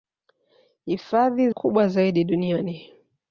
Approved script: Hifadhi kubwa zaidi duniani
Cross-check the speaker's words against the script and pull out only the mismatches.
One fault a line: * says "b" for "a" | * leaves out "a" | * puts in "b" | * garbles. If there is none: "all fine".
all fine